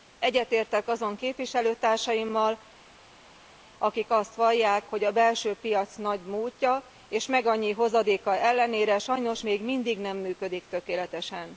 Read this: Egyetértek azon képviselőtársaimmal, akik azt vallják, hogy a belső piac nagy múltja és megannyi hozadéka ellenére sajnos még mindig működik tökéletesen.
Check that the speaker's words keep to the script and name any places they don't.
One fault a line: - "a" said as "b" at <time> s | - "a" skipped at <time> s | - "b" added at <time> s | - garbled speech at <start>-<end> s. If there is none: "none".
- "nem" added at 10.0 s